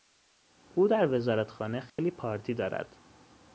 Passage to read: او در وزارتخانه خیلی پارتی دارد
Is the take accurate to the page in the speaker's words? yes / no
yes